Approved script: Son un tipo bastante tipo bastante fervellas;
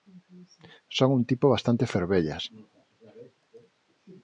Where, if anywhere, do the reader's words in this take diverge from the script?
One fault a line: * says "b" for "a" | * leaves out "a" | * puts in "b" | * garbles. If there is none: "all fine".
* leaves out "tipo bastante"